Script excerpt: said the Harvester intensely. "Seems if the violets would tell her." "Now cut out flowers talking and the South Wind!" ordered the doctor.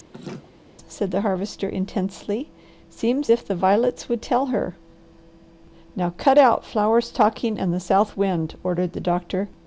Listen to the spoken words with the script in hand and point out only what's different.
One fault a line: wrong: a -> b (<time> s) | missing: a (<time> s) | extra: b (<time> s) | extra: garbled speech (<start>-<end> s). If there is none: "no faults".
no faults